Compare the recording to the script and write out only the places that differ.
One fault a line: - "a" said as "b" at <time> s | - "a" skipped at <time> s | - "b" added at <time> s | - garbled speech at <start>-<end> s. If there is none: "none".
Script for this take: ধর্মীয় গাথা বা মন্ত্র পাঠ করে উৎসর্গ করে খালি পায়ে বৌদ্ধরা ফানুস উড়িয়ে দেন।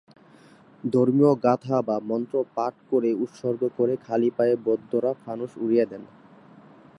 none